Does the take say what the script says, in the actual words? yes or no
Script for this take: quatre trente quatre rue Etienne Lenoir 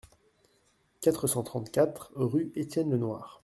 no